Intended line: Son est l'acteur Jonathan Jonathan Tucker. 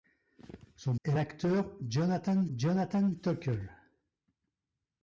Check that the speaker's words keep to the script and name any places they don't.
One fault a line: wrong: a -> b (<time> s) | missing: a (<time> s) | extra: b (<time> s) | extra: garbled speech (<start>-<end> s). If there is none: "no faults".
no faults